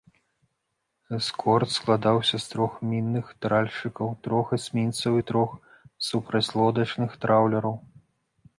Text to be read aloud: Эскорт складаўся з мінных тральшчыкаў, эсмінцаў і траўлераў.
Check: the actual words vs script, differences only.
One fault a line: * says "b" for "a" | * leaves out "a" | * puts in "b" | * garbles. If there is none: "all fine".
* puts in "трох"
* puts in "трох"
* puts in "трох супрацьлодачных"